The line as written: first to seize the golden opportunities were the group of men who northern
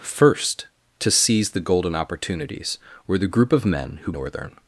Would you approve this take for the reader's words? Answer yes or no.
yes